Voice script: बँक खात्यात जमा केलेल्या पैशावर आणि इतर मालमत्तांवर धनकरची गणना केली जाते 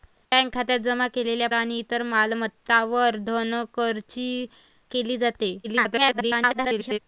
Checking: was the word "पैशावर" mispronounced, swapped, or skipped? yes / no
yes